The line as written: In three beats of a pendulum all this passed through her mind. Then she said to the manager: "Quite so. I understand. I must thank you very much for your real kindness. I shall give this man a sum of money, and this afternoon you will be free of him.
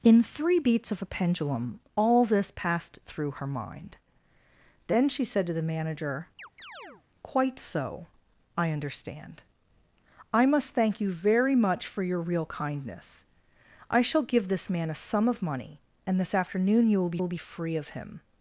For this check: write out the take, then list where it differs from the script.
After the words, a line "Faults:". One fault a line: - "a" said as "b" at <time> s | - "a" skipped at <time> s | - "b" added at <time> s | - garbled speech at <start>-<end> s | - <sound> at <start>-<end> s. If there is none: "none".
In three beats of a pendulum all this passed through her mind. Then she said to the manager: "Quite so. I understand. I must thank you very much for your real kindness. I shall give this man a sum of money, and this afternoon you will will be free of him.
Faults:
- chirp at 6.4-7.0 s
- "will" added at 17.2 s